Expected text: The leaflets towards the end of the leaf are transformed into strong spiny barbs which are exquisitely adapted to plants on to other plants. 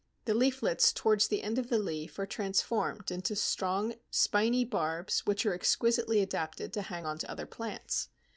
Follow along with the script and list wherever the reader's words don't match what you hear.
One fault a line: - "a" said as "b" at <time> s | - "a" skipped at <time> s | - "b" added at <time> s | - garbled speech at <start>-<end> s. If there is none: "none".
- "plants" said as "hang" at 6.8 s